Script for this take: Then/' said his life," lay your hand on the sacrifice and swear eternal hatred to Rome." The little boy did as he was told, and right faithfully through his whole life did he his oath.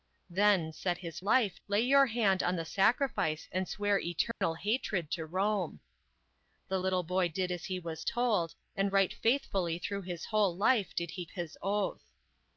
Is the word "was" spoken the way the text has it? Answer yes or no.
yes